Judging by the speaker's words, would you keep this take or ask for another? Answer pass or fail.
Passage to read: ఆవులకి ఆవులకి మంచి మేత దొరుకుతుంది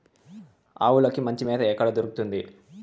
fail